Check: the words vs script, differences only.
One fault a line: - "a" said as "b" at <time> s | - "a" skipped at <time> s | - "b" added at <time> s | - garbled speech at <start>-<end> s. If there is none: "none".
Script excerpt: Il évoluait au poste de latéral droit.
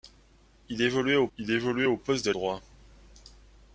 - "il évoluait au" added at 1.4 s
- "latéral" skipped at 2.3 s